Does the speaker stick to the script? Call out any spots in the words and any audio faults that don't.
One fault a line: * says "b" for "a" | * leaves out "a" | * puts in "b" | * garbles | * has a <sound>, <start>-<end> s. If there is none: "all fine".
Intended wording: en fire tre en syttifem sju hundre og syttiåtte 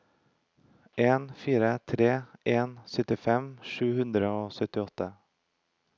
all fine